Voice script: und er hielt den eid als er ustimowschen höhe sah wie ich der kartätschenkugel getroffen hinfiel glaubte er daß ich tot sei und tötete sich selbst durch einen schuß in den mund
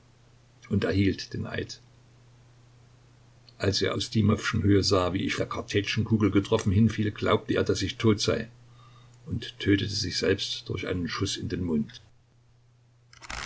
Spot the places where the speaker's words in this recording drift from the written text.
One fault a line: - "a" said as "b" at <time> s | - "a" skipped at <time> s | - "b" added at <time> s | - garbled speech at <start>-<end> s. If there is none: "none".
none